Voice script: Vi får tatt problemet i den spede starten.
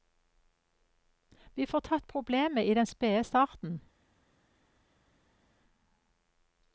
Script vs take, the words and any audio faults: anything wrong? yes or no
no